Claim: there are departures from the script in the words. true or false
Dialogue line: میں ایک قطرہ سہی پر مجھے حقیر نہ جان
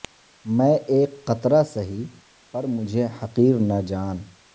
false